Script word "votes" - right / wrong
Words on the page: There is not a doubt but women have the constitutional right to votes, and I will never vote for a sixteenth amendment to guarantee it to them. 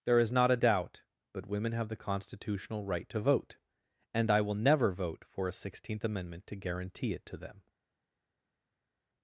wrong